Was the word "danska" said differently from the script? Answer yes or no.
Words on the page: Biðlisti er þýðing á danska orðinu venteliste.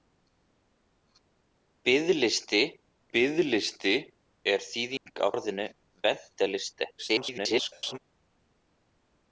yes